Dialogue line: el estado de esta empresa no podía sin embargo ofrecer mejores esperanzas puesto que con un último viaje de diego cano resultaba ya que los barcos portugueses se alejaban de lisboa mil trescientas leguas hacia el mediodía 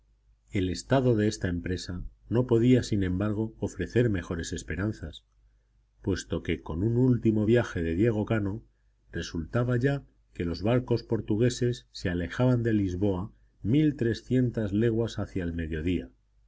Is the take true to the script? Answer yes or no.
yes